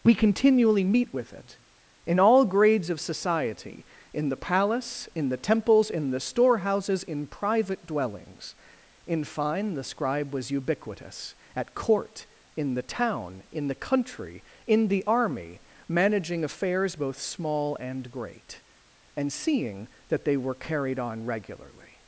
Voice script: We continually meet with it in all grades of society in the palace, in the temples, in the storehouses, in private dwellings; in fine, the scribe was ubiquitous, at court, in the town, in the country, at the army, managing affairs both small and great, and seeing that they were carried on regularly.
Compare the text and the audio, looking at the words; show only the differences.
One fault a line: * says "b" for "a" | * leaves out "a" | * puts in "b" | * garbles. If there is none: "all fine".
* says "in" for "at"